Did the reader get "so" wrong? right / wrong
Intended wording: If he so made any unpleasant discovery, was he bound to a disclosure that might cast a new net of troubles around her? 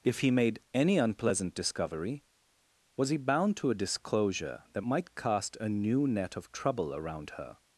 wrong